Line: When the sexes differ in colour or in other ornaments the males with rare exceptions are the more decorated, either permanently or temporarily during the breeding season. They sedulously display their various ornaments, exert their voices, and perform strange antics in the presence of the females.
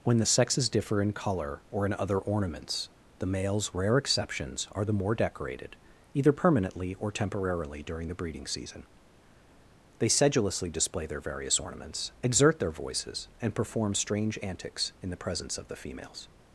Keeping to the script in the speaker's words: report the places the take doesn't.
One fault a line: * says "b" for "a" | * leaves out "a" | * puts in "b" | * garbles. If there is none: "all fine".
* leaves out "with"